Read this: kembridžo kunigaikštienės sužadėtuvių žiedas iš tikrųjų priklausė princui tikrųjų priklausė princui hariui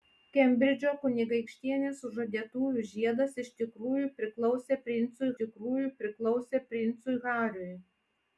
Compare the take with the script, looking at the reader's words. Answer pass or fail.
pass